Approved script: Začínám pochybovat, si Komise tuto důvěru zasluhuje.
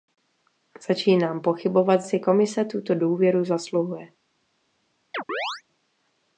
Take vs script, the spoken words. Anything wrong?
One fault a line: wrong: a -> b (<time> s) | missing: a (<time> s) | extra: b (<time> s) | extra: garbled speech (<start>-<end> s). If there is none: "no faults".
no faults